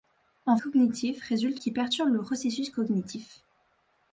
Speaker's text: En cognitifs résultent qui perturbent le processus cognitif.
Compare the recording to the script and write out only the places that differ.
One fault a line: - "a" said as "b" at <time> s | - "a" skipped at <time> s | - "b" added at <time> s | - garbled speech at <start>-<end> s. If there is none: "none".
none